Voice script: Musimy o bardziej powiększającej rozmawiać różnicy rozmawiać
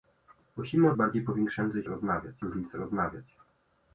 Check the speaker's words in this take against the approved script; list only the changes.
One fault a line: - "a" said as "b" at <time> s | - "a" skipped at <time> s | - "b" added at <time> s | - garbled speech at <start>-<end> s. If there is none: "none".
none